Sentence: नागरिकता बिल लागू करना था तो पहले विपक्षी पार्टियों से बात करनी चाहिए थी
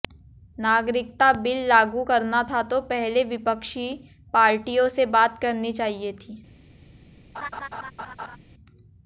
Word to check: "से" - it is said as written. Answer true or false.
true